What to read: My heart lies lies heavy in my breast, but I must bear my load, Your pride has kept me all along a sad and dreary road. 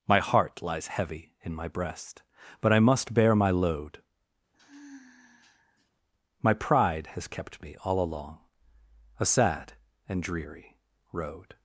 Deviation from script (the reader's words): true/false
true